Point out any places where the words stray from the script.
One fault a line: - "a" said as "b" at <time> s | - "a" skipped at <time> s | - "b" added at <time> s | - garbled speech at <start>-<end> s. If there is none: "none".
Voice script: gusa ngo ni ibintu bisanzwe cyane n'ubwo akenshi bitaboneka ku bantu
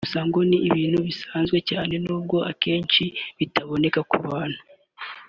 none